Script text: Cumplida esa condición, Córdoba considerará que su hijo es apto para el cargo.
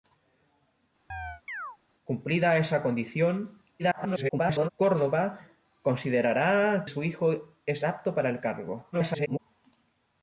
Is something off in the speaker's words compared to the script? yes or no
yes